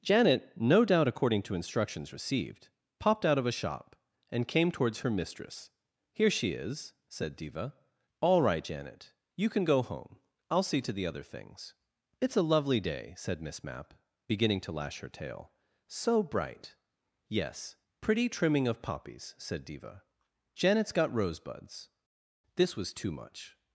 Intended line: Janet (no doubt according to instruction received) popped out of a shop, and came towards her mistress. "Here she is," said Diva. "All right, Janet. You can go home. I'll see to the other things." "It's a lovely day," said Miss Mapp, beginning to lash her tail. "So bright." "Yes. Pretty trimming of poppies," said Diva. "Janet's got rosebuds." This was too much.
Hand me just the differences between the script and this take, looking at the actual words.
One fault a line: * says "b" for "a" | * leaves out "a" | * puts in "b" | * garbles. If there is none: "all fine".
* says "instructions" for "instruction"